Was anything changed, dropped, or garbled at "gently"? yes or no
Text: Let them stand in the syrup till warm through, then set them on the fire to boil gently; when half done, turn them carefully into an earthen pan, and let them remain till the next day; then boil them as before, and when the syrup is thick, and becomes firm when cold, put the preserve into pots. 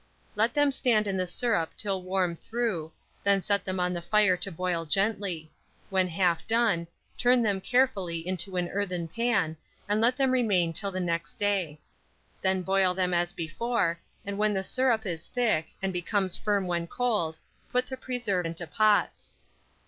no